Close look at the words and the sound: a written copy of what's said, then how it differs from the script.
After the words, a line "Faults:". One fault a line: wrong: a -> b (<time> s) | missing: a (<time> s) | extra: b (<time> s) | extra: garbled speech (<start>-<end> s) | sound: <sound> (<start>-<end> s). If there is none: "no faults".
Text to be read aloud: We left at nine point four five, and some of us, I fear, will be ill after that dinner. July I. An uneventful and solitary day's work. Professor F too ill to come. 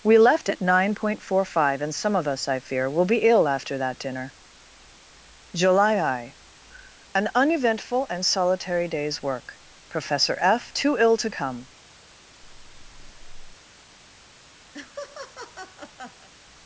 We left at nine point four five, and some of us, I fear, will be ill after that dinner. July I. An uneventful and solitary day's work. Professor F too ill to come.
Faults:
sound: breath (12.4-13.6 s)
sound: laugh (14.7-16.3 s)